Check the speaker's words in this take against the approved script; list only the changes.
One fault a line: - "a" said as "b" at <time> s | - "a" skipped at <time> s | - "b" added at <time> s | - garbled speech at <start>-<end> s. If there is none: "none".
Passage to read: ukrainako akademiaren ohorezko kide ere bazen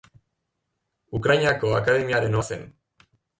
- "ohorezko kide ere" skipped at 2.4 s